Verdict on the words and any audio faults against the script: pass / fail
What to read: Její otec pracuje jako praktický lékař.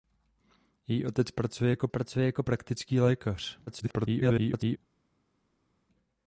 fail